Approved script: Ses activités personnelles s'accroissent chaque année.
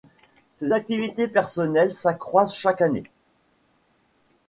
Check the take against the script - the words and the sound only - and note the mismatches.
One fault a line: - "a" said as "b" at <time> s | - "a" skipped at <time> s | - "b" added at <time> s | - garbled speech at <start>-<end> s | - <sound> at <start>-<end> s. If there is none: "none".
none